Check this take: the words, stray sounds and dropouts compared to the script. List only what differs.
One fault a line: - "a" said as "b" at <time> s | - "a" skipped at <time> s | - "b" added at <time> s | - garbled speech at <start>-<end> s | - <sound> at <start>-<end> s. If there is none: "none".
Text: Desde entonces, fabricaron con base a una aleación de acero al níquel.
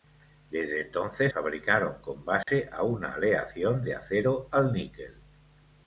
- dropout at 2.4-2.5 s